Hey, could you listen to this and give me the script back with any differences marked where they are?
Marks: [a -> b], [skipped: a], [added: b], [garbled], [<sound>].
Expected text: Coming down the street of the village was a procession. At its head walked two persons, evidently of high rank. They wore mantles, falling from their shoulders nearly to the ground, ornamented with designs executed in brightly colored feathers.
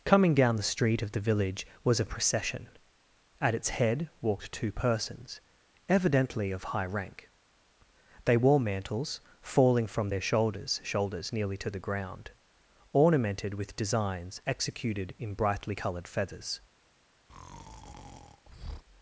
Coming down the street of the village was a procession. At its head walked two persons, evidently of high rank. They wore mantles, falling from their shoulders [added: shoulders] nearly to the ground, ornamented with designs executed in brightly colored feathers. [breath]